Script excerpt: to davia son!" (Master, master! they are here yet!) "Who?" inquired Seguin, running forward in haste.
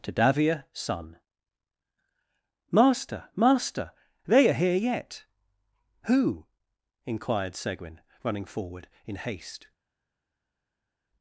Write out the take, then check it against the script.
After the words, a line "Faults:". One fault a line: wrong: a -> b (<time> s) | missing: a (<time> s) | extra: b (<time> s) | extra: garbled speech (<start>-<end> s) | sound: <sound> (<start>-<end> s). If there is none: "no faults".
to davia son!" (Master, master! they are here yet!) "Who?" inquired Seguin, running forward in haste.
Faults:
no faults